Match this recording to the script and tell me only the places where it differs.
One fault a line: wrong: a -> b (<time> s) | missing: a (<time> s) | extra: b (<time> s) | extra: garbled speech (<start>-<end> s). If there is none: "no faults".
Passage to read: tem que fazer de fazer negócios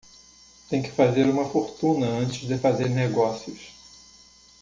extra: uma fortuna antes (1.3 s)